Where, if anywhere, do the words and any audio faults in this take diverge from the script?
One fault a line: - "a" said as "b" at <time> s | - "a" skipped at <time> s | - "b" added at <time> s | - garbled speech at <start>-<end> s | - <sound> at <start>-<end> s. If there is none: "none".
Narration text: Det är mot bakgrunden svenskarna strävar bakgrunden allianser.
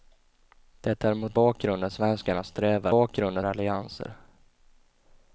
none